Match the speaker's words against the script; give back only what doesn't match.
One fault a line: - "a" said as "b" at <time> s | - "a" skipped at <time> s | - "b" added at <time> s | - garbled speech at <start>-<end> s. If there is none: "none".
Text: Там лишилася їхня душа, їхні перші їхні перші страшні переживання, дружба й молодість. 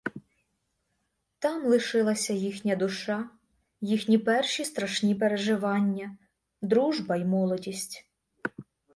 - "їхні перші" skipped at 4.7 s